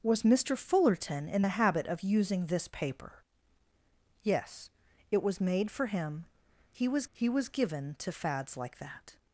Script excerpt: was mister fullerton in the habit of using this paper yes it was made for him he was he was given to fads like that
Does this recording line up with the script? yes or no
yes